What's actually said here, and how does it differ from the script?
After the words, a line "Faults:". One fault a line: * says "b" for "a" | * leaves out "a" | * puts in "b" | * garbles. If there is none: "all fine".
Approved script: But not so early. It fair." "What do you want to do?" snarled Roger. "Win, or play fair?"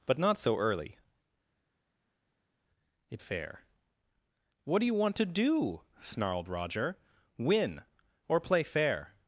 But not so early. It fair." "What do you want to do?" snarled Roger. "Win, or play fair?"
Faults:
all fine